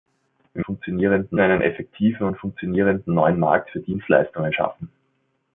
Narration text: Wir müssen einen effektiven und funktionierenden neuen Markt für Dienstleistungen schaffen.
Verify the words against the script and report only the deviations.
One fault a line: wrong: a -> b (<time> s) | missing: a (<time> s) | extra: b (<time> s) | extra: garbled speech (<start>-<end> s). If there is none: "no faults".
wrong: müssen -> funktionierenden (0.6 s)